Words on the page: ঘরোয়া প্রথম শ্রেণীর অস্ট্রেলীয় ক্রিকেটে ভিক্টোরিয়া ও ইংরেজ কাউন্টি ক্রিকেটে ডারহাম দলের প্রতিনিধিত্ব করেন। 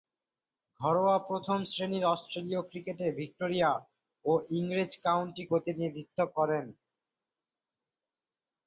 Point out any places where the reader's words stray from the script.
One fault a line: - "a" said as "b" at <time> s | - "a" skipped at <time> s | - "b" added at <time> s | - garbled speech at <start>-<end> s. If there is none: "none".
- "ক্রিকেটে ডারহাম দলের" skipped at 5.4 s